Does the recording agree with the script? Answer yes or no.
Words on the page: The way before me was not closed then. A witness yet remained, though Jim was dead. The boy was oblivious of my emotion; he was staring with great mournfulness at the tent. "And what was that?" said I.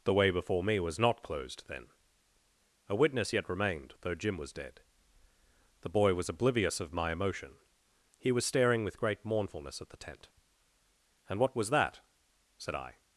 yes